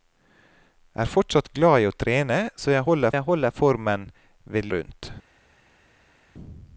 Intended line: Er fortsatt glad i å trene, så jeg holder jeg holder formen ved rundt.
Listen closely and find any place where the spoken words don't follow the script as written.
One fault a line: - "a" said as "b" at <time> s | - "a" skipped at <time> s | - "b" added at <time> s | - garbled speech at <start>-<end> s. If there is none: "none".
none